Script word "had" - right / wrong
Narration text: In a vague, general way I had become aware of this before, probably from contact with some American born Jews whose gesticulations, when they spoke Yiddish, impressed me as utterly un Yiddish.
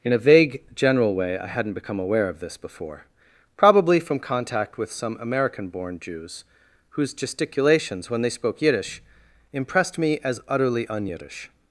wrong